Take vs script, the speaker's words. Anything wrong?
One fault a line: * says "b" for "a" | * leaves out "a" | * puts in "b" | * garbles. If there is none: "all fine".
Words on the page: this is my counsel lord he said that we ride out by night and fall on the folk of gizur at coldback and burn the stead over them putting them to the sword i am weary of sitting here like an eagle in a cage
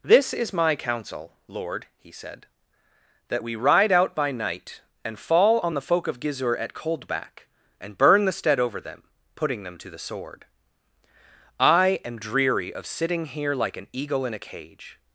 * says "dreary" for "weary"